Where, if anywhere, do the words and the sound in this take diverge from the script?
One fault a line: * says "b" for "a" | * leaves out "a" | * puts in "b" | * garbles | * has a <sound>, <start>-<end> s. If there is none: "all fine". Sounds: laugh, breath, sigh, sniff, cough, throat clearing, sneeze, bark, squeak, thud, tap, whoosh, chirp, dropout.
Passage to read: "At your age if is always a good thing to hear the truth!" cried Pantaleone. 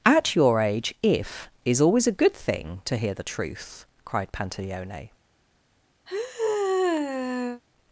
* has a sigh, 6.1-7.6 s